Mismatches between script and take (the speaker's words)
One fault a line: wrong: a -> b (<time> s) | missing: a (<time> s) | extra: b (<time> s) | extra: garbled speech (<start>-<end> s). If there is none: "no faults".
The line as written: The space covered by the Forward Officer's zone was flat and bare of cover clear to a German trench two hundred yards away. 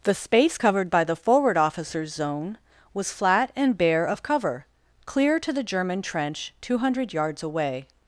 wrong: a -> the (5.5 s)